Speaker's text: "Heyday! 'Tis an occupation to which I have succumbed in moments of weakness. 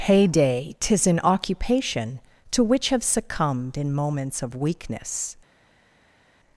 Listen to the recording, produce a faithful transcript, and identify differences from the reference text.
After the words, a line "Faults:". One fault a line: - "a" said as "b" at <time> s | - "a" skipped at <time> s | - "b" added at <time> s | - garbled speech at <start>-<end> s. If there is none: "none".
"Heyday! 'Tis an occupation to which have succumbed in moments of weakness.
Faults:
- "I" skipped at 2.9 s